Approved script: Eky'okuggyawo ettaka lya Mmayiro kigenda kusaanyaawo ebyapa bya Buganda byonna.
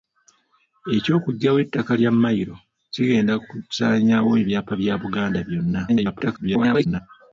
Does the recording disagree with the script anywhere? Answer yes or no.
yes